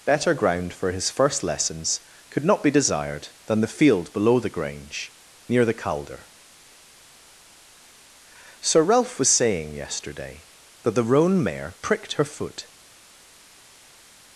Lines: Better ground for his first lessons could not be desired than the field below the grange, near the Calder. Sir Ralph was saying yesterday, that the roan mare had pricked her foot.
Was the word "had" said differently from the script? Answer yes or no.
yes